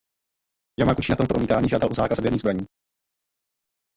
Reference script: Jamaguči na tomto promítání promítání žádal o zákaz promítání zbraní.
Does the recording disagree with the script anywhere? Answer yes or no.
yes